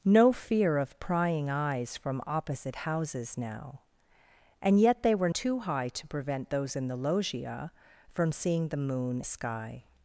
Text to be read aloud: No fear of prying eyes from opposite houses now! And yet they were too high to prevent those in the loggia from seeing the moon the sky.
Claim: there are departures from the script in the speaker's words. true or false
false